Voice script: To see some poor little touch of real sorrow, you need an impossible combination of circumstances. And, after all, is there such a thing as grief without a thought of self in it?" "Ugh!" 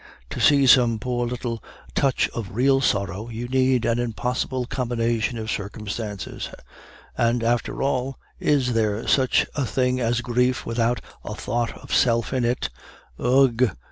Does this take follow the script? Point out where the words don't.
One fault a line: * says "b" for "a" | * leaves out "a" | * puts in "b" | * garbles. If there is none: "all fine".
all fine